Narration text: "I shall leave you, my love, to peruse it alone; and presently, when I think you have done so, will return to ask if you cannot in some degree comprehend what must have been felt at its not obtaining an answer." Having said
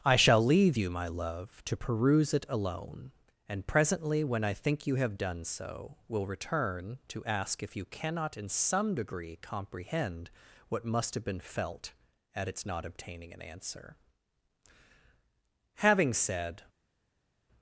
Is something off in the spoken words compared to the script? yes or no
no